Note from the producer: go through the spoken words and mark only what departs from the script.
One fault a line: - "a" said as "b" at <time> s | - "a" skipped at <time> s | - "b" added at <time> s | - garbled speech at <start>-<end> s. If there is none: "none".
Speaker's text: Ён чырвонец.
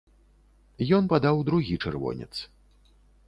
- "падаў другі" added at 1.1 s